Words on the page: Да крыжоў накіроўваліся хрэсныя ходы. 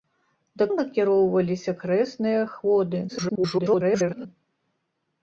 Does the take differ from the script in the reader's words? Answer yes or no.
yes